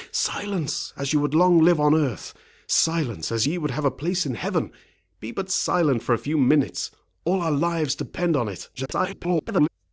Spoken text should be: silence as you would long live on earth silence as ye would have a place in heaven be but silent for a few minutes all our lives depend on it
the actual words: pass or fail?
fail